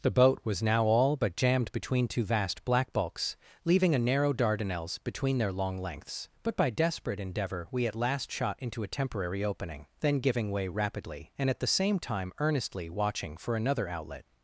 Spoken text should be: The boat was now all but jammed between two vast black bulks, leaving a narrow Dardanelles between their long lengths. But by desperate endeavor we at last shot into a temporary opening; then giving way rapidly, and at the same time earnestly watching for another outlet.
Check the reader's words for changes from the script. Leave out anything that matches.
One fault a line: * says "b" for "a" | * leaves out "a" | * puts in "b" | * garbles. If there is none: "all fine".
all fine